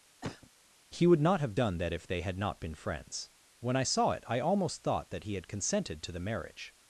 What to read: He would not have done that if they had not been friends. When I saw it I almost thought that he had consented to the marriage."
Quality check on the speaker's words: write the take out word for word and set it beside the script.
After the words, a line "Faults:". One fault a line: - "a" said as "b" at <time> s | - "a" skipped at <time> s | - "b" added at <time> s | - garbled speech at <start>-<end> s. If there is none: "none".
He would not have done that if they had not been friends. When I saw it I almost thought that he had consented to the marriage."
Faults:
none